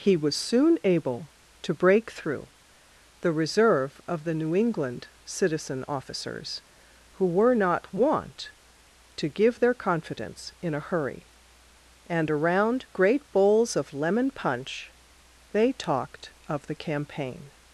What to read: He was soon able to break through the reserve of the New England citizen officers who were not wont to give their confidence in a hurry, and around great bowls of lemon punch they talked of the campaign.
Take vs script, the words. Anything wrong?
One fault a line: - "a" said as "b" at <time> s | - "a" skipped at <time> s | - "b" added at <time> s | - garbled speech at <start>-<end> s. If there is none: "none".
none